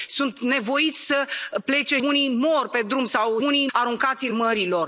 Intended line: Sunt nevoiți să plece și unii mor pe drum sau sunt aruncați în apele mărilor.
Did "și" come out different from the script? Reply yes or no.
yes